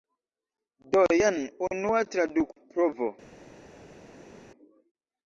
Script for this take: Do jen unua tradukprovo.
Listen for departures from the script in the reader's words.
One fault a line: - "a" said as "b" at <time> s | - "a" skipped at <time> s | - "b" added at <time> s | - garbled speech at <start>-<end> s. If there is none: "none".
none